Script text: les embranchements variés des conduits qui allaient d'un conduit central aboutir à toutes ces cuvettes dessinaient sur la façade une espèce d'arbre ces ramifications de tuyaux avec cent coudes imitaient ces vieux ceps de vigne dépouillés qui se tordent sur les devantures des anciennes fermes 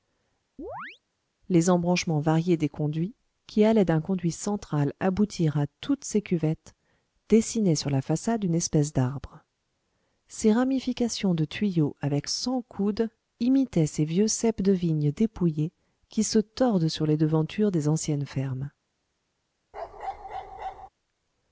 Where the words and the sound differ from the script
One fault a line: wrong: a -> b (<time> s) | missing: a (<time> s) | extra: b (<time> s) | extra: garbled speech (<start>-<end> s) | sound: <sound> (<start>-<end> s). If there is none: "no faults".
sound: chirp (0.6-1.0 s)
sound: bark (19.7-20.9 s)